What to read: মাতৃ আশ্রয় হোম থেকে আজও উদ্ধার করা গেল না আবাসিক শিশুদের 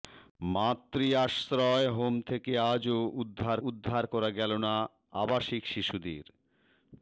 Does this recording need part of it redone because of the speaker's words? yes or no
yes